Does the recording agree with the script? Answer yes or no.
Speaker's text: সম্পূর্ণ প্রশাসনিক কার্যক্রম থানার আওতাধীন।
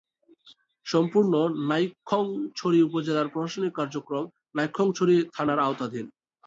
no